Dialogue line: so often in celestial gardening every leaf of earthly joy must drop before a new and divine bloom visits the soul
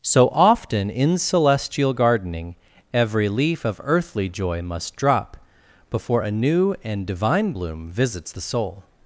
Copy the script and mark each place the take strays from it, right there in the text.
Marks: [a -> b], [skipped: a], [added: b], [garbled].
so often in celestial gardening every leaf of earthly joy must drop before a new and divine bloom visits the soul